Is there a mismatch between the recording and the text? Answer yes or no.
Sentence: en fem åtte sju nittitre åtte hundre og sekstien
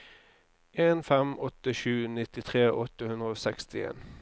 no